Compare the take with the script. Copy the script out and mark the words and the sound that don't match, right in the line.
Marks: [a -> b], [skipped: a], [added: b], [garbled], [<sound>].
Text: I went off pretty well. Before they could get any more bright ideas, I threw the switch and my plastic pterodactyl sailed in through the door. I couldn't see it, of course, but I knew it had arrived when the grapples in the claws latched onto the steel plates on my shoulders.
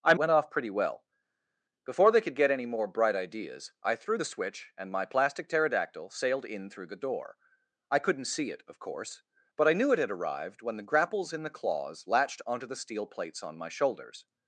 I went off pretty well. Before they could get any more bright ideas, I threw the switch and my plastic pterodactyl sailed in through the door. I couldn't see it, of course, but I knew it had arrived when the grapples in the claws latched onto the steel plates on my shoulders.